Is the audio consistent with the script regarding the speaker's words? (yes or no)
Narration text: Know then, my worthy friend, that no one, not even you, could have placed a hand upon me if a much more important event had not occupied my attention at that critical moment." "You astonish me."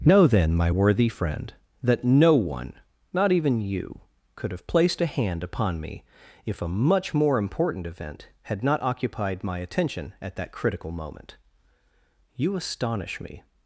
yes